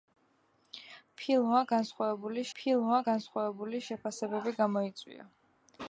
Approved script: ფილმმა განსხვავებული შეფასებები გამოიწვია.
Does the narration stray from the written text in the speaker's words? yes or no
yes